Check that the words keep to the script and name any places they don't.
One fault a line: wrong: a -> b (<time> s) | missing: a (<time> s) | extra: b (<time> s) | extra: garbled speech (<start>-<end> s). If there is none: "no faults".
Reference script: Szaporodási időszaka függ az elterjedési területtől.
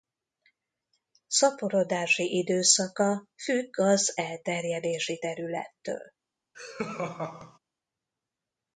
no faults